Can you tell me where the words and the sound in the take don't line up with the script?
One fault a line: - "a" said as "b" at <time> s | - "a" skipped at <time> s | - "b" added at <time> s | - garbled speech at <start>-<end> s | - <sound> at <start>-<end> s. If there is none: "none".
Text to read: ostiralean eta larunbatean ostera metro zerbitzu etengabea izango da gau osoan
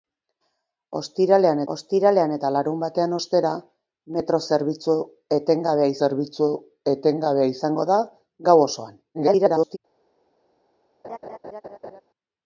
- "ostiralean" added at 1.7 s
- "zerbitzu etengabea" added at 6.0 s
- garbled speech at 9.1-9.8 s
- laugh at 11.0-12.0 s